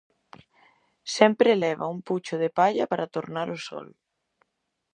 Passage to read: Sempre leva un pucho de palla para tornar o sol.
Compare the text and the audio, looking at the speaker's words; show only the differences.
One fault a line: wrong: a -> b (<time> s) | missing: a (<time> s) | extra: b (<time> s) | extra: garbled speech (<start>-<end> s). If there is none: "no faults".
no faults